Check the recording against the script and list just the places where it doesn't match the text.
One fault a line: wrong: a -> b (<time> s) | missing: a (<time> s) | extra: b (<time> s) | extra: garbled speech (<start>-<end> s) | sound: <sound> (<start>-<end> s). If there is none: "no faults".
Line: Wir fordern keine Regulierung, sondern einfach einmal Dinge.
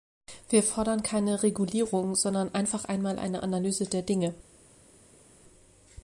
extra: eine Analyse der (3.2 s)